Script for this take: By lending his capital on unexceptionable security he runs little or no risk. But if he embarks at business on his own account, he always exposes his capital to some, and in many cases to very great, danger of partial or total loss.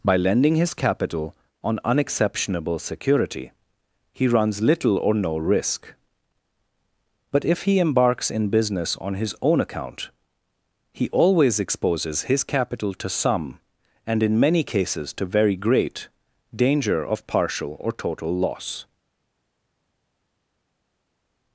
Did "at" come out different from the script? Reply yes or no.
yes